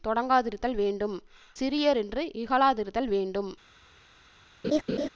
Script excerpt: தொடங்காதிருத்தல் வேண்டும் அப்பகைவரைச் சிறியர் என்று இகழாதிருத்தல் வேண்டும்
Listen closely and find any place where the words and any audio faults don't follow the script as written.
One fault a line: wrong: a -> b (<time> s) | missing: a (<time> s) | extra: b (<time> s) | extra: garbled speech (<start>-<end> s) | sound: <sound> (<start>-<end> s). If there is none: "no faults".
missing: அப்பகைவரைச் (1.1 s)
sound: laugh (4.6-5.1 s)